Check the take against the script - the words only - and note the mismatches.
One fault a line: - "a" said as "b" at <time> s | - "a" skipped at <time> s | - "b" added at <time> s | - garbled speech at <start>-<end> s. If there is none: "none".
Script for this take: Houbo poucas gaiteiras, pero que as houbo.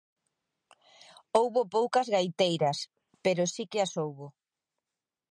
- "si" added at 3.5 s